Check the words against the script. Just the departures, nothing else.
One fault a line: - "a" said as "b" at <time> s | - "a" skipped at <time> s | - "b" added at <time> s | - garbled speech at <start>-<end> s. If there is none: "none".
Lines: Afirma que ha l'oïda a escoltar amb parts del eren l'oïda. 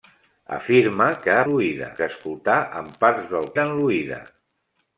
none